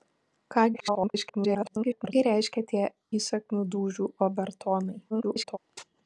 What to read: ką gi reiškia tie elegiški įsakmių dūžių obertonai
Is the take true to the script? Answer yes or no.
no